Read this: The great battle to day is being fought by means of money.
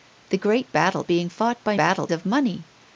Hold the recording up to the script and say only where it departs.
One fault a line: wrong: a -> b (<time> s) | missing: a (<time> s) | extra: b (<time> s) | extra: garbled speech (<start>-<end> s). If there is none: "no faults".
missing: to day is (1.0 s)
wrong: means -> battle (1.7 s)